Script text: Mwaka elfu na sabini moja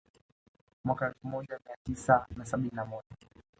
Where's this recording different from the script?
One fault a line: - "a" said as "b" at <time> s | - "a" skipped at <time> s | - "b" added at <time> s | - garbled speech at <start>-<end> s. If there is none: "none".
- "moja Mia tisa" added at 1.3 s
- "na" added at 2.7 s